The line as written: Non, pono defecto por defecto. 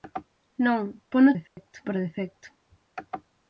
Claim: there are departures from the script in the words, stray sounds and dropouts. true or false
true